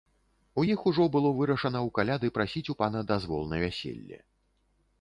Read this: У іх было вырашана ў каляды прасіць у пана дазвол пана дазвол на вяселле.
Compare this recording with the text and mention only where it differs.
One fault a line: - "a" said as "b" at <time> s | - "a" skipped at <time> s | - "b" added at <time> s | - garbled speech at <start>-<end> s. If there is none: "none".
- "ужо" added at 0.9 s
- "пана дазвол" skipped at 3.4 s